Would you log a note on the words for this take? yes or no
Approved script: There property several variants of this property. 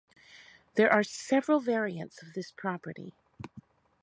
yes